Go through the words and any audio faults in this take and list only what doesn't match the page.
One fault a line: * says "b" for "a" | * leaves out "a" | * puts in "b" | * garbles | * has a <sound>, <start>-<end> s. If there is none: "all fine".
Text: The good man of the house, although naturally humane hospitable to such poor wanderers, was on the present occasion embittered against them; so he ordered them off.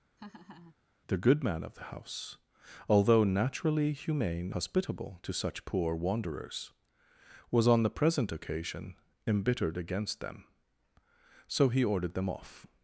* has a laugh, 0.2-0.8 s